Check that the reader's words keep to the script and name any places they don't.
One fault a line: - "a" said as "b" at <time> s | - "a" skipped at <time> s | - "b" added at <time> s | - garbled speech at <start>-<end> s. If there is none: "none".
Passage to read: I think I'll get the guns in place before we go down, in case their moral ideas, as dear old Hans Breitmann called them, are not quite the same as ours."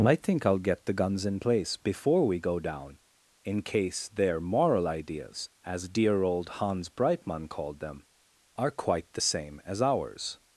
- "not" skipped at 8.7 s